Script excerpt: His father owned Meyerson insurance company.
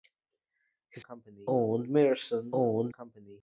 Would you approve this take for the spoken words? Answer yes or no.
no